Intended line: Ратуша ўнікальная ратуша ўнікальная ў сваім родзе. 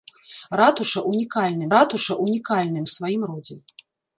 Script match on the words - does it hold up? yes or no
yes